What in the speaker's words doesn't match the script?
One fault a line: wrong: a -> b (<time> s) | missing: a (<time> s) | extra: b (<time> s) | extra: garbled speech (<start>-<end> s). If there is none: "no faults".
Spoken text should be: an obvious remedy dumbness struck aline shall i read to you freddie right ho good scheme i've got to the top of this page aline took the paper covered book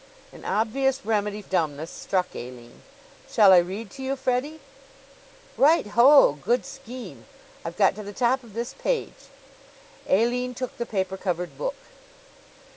no faults